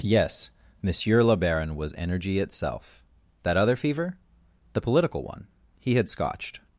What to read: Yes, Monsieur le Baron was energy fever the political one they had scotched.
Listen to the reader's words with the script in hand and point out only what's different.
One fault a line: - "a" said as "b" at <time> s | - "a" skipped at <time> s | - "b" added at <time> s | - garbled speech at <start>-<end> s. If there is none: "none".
- "itself That other" added at 2.4 s
- "they" said as "he" at 5.8 s